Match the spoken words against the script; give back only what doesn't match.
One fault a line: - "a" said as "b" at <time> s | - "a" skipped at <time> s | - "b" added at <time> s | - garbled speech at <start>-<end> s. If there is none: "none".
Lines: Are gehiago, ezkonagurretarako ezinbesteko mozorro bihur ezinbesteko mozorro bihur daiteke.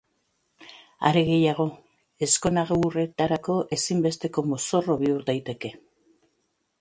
- "ezinbesteko mozorro bihur" skipped at 5.3 s